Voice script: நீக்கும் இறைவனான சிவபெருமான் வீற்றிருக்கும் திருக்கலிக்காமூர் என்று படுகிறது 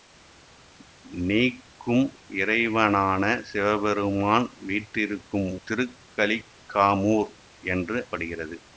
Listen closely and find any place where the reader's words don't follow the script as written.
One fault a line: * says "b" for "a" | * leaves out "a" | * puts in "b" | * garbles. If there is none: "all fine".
all fine